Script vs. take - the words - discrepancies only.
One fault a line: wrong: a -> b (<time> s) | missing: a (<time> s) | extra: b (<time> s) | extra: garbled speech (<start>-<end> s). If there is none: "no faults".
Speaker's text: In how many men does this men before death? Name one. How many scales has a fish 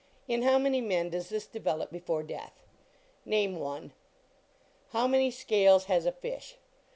wrong: men -> develop (1.4 s)